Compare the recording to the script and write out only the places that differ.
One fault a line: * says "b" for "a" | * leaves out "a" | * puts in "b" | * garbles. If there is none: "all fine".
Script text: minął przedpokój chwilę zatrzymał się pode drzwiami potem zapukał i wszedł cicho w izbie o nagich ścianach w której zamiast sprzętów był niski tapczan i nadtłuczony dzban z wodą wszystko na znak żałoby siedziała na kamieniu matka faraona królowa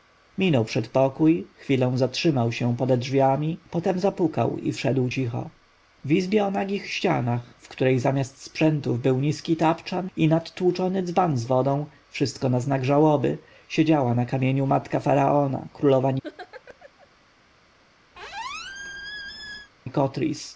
all fine